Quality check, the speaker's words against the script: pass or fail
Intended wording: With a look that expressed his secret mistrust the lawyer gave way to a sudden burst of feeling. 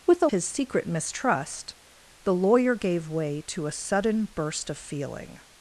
fail